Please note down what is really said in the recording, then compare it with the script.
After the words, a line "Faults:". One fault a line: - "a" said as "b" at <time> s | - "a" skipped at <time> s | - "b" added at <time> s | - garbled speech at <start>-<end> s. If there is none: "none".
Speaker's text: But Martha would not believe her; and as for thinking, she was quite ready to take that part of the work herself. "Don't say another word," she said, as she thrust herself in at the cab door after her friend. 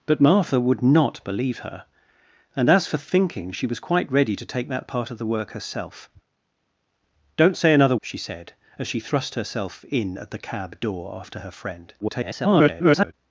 But Martha would not believe her; and as for thinking, she was quite ready to take that part of the work herself. "Don't say another," she said, as she thrust herself in at the cab door after her friend. [garbled]
Faults:
- "word" skipped at 8.0 s
- garbled speech at 12.0-13.1 s